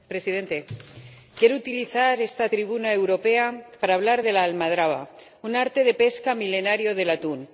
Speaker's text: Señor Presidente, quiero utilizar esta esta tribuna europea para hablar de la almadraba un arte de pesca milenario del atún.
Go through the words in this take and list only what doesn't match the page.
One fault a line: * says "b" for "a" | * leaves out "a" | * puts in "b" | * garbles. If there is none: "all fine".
* leaves out "esta"